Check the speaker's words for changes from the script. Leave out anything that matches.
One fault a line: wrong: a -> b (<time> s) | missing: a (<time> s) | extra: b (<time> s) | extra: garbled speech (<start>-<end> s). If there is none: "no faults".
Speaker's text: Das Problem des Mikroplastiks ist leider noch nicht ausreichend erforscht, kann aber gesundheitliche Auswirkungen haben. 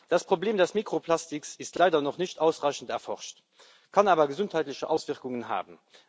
no faults